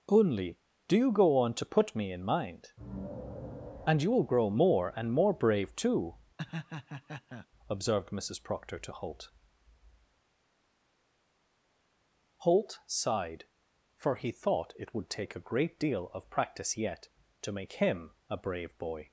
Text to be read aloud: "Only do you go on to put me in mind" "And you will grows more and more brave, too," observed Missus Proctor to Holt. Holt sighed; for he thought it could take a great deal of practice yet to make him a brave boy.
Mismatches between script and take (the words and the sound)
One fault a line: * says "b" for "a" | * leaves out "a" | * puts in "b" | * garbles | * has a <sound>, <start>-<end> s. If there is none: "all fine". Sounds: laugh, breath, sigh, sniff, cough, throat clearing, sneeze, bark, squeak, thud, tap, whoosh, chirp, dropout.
* says "grow" for "grows"
* has a laugh, 6.4-7.5 s
* says "would" for "could"